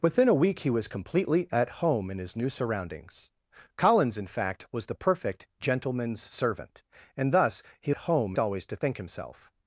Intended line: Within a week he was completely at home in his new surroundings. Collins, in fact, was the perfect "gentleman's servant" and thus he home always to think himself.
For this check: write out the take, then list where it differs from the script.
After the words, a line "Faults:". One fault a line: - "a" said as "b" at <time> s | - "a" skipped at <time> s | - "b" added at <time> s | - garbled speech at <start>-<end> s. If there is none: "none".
Within a week he was completely at home in his new surroundings. Collins, in fact, was the perfect "gentleman's servant" and thus he home always to think himself.
Faults:
none